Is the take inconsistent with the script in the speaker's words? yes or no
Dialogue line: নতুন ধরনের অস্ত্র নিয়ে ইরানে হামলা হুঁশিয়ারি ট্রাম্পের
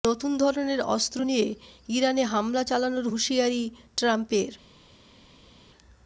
yes